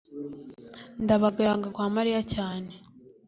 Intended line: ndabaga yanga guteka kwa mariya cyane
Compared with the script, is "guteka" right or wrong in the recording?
wrong